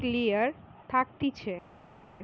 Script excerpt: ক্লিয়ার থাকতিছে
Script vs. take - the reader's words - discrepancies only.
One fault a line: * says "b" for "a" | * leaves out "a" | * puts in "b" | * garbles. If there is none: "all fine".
all fine